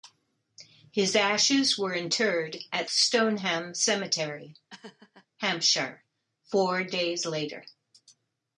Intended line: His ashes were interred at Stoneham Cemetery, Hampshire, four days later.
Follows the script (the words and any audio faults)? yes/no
no